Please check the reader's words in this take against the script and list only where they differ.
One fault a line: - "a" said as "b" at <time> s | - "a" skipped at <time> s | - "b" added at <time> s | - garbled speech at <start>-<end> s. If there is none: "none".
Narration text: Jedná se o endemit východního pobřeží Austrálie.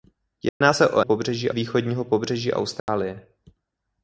- "endemit" said as "pobřeží" at 1.0 s